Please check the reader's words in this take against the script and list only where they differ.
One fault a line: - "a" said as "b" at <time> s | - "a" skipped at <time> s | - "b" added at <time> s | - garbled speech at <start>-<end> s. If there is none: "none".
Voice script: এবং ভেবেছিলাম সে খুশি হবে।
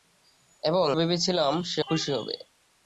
none